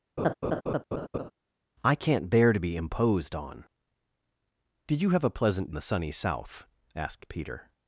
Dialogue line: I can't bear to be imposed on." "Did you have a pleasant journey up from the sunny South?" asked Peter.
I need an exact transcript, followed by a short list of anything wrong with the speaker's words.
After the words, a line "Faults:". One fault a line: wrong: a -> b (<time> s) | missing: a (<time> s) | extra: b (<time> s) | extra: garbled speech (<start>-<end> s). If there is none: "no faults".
I can't bear to be imposed on." "Did you have a pleasant the sunny South?" asked Peter.
Faults:
missing: journey up from (5.7 s)